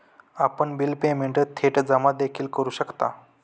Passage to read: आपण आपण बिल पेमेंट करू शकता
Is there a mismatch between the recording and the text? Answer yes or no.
yes